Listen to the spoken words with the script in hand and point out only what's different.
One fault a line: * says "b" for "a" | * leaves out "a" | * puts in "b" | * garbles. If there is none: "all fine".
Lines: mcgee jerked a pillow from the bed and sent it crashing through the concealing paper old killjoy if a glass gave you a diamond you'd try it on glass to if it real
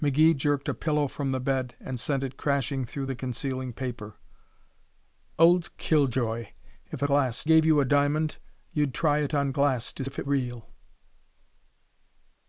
all fine